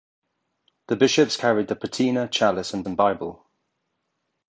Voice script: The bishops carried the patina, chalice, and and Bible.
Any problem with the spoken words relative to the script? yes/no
no